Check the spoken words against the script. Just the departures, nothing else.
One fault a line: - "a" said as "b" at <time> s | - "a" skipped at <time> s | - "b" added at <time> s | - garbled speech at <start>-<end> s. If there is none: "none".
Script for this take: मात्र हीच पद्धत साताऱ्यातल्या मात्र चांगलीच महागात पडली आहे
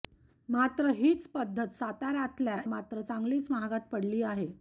none